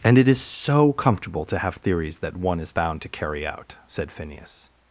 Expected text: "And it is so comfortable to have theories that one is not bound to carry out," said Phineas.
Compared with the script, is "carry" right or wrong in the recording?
right